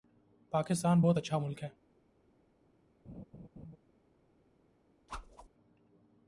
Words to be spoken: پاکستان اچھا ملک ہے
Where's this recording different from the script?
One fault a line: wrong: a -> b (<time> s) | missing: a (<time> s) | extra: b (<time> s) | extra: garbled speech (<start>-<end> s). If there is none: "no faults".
extra: بہت (1.0 s)